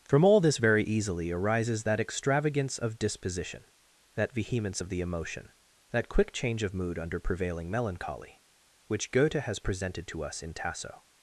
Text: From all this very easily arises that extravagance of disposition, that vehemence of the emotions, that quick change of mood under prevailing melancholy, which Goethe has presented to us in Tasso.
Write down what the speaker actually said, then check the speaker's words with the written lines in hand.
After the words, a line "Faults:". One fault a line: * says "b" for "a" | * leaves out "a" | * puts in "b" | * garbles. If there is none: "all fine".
From all this very easily arises that extravagance of disposition, that vehemence of the emotion, that quick change of mood under prevailing melancholy, which Goethe has presented to us in Tasso.
Faults:
* says "emotion" for "emotions"